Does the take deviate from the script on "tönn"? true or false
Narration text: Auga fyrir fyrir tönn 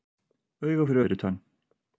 false